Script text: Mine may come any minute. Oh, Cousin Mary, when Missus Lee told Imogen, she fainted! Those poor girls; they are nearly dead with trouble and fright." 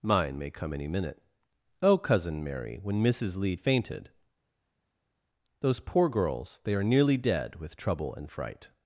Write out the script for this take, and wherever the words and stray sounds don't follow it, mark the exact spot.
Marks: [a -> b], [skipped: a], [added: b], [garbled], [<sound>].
Mine may come any minute. Oh, Cousin Mary, when Missus Lee [skipped: told Imogen, she] fainted! Those poor girls; they are nearly dead with trouble and fright."